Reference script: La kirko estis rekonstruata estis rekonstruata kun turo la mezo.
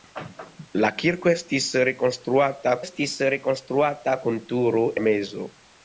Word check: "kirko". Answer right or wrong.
right